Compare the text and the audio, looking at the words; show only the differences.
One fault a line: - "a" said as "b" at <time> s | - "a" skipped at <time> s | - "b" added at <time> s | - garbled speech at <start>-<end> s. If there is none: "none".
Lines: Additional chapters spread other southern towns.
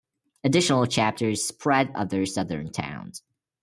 none